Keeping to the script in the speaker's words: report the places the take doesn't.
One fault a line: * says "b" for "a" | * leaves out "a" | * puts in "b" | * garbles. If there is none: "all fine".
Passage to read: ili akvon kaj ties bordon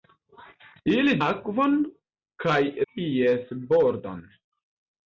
all fine